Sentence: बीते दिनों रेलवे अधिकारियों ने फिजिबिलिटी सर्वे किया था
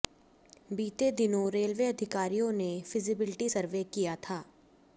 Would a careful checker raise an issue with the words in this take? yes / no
no